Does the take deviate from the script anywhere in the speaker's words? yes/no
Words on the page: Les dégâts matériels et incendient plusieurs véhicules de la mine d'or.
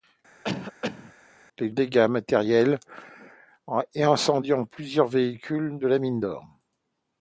no